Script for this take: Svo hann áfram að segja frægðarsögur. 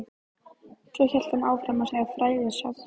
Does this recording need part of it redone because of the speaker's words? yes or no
yes